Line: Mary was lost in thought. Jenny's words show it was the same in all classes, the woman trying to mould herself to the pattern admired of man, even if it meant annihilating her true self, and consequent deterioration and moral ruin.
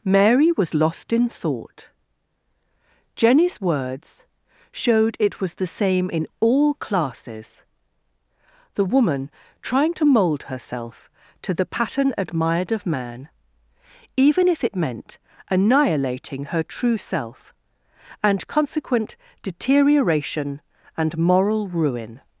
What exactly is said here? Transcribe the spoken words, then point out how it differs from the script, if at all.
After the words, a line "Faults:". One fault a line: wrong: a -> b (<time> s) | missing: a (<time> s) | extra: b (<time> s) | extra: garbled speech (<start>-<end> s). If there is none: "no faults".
Mary was lost in thought. Jenny's words showed it was the same in all classes, the woman trying to mould herself to the pattern admired of man, even if it meant annihilating her true self, and consequent deterioration and moral ruin.
Faults:
wrong: show -> showed (4.7 s)